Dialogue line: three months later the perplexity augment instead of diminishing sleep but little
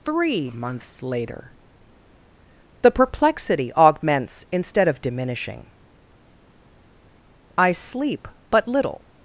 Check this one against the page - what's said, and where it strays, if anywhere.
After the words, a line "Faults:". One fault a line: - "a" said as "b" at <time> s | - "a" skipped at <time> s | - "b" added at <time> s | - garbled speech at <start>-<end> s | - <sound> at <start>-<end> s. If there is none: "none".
three months later the perplexity augments instead of diminishing i sleep but little
Faults:
- "augment" said as "augments" at 3.8 s
- "i" added at 7.6 s